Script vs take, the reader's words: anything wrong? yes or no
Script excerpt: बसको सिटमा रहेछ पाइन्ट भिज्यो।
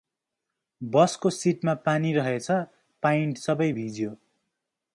yes